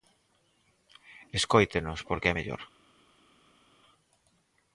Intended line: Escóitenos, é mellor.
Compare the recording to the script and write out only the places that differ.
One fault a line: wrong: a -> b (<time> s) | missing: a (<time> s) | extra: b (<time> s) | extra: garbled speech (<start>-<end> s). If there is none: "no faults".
extra: porque (2.1 s)